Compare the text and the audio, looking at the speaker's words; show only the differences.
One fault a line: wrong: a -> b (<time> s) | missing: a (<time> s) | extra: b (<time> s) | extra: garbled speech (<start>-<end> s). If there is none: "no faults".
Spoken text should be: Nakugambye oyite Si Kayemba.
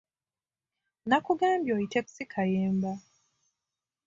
no faults